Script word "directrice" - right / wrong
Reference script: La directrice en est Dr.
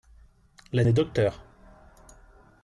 wrong